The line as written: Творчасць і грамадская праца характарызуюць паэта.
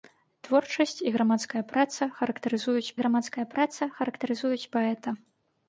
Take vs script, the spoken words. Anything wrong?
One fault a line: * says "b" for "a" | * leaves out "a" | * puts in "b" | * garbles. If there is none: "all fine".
* puts in "грамадская праца характарызуюць"